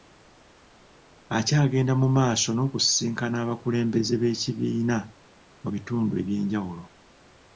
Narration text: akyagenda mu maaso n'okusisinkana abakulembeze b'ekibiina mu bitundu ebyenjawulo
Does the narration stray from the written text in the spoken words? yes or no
no